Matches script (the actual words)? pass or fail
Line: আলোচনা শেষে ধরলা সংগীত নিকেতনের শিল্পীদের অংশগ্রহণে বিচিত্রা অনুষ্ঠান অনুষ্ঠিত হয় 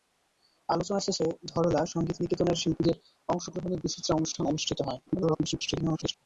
fail